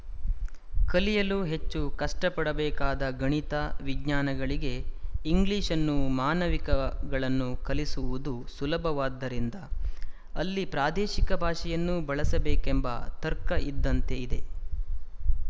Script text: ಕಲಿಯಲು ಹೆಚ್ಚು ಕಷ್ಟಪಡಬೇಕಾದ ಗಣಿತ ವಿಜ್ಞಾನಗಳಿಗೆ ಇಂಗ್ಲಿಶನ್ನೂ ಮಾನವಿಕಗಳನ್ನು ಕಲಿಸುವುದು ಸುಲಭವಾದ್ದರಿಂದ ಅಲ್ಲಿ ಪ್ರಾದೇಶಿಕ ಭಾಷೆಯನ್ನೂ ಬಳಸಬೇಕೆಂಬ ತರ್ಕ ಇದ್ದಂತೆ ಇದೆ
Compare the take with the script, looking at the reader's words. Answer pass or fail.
pass